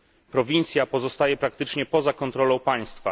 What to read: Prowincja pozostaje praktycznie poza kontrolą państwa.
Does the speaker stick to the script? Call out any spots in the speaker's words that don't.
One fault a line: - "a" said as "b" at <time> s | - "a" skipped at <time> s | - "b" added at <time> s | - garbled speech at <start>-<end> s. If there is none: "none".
none